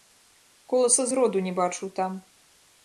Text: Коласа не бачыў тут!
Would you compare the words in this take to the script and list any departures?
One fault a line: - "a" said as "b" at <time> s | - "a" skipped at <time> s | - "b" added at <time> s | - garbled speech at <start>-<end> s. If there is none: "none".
- "зроду" added at 1.1 s
- "тут" said as "там" at 2.0 s